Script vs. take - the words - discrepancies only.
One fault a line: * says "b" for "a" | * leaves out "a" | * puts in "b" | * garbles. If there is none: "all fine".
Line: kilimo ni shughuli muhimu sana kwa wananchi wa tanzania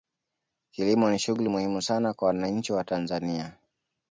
all fine